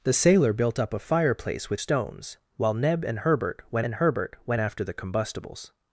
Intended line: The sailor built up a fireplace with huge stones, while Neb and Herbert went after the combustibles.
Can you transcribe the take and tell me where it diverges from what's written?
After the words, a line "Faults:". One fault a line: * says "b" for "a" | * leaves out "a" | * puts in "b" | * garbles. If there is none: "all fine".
The sailor built up a fireplace with stones, while Neb and Herbert went and Herbert went after the combustibles.
Faults:
* leaves out "huge"
* puts in "and Herbert went"